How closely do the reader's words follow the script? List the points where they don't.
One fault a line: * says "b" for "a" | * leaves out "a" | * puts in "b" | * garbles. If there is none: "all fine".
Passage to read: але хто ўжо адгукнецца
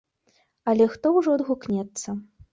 all fine